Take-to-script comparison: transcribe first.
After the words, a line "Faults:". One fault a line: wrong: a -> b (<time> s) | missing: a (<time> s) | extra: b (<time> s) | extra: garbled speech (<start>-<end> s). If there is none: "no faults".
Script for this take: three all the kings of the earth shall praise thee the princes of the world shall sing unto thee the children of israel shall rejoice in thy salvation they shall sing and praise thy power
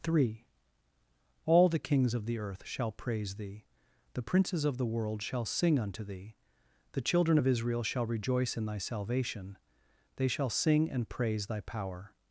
three all the kings of the earth shall praise thee the princes of the world shall sing unto thee the children of israel shall rejoice in thy salvation they shall sing and praise thy power
Faults:
no faults